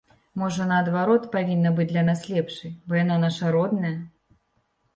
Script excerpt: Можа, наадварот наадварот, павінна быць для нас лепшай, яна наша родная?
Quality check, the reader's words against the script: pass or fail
fail